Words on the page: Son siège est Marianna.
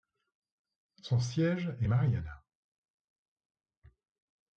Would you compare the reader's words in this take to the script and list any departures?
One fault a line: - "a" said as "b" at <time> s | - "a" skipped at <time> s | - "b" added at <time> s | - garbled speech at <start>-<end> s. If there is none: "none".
none